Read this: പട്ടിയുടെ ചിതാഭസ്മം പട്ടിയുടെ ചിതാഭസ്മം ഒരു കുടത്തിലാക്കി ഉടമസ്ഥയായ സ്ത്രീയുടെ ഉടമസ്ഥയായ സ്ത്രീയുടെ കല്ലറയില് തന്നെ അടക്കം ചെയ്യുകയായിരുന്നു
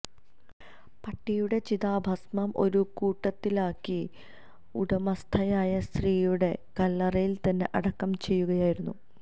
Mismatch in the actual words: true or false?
true